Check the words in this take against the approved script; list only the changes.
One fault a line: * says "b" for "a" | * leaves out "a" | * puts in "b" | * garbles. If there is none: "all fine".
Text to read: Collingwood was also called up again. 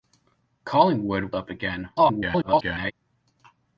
* leaves out "was also called"
* garbles